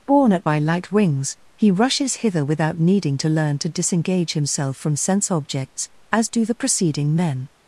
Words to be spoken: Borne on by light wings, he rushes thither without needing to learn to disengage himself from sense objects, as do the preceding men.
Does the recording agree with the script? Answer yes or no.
no